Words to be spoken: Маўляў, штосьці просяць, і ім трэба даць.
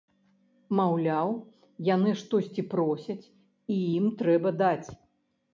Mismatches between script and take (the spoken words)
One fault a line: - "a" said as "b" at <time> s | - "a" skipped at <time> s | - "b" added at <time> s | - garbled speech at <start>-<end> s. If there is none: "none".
- "яны" added at 1.9 s